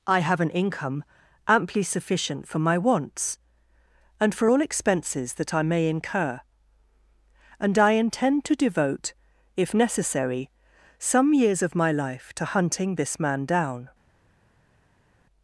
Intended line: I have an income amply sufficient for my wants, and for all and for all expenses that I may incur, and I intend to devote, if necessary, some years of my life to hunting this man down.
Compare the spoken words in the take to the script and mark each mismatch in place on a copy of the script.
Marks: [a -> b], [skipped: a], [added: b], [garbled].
I have an income amply sufficient for my wants, and for all [skipped: and for all] expenses that I may incur, and I intend to devote, if necessary, some years of my life to hunting this man down.